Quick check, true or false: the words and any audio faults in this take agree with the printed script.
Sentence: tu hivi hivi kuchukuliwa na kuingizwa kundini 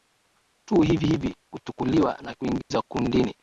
false